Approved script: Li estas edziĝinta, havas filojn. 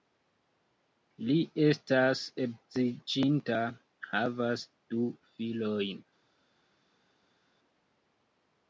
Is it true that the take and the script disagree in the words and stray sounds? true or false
true